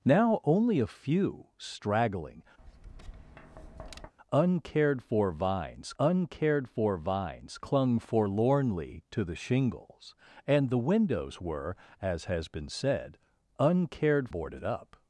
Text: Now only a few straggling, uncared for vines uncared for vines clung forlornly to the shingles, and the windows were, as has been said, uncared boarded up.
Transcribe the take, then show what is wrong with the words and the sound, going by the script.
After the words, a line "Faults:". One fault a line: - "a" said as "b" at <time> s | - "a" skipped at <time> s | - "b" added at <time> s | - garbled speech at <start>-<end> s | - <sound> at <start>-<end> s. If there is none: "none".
Now only a few straggling, uncared for vines uncared for vines clung forlornly to the shingles, and the windows were, as has been said, uncared boarded up.
Faults:
- tap at 2.6-4.1 s